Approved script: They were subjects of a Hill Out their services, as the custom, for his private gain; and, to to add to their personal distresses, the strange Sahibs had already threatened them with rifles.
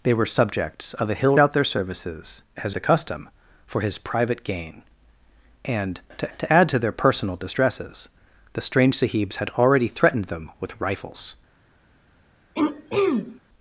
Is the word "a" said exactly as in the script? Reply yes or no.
yes